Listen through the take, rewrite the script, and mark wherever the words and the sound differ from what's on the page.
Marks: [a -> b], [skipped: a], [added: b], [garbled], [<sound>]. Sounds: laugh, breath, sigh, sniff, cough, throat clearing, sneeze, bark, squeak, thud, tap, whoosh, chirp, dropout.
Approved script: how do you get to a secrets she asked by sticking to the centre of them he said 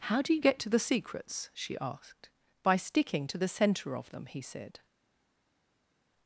how do you get to [a -> the] secrets she asked by sticking to the centre of them he said